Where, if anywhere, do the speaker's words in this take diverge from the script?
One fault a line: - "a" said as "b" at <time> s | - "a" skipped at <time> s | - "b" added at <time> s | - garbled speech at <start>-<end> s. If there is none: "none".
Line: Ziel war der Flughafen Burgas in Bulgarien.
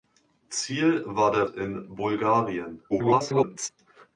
- "Flughafen Burgas" skipped at 1.4 s
- garbled speech at 2.9-3.7 s